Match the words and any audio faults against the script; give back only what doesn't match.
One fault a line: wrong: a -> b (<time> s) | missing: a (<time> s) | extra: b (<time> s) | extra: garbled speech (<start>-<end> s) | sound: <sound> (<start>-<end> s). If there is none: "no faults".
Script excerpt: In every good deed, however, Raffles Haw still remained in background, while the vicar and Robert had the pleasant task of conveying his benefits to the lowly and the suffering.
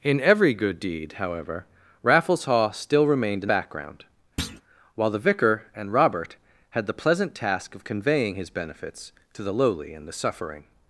sound: thud (4.4-4.6 s)